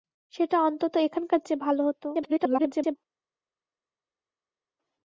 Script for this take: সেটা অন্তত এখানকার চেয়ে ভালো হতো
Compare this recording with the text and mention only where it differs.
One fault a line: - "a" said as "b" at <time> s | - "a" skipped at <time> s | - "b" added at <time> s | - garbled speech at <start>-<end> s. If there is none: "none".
- garbled speech at 2.1-3.0 s